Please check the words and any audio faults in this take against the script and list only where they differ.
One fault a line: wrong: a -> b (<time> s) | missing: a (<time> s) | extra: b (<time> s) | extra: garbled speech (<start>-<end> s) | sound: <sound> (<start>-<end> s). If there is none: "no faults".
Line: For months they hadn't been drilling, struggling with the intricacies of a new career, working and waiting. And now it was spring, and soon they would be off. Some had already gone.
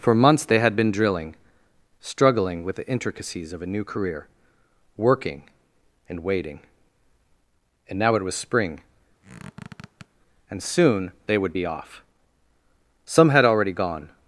wrong: hadn't -> had (0.6 s)
sound: squeak (9.2-10.1 s)